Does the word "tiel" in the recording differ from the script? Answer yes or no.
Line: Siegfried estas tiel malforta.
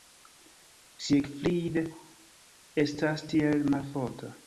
no